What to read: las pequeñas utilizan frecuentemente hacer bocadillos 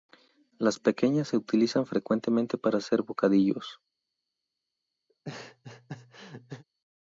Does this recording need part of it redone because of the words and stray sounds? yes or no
yes